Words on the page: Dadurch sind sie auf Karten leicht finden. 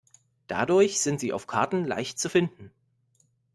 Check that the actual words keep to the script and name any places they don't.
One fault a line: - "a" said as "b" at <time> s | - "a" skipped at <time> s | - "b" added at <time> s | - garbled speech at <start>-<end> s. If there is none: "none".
- "zu" added at 2.2 s